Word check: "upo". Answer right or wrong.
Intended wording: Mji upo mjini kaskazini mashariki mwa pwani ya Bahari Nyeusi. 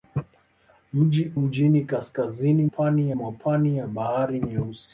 wrong